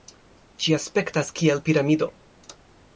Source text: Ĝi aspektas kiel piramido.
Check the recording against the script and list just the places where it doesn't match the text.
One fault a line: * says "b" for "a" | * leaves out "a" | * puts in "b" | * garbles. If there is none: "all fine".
all fine